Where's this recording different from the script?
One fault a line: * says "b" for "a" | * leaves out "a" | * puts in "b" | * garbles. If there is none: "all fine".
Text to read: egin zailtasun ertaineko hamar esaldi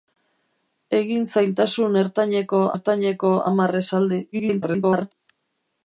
* puts in "ertaineko"
* garbles